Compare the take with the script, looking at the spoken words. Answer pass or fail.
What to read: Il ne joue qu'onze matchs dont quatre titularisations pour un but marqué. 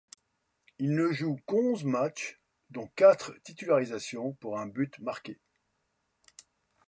pass